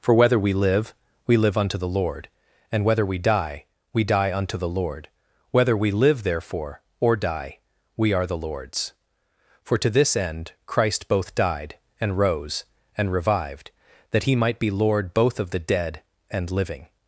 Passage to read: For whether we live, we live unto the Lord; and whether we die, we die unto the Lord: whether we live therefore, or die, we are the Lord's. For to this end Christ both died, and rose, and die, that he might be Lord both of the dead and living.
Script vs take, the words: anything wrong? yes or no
yes